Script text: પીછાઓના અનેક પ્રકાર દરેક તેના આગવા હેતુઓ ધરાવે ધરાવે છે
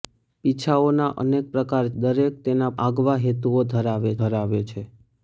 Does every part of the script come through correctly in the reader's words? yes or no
yes